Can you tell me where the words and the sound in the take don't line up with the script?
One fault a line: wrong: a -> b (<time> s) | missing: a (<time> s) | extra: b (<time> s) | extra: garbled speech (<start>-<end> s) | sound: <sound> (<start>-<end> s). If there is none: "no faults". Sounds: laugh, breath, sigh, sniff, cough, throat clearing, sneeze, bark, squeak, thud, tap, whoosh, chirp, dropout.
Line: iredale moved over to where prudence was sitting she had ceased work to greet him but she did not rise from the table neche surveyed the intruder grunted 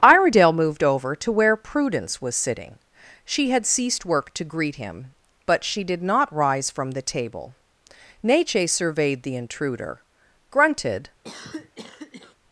sound: cough (11.2-12.4 s)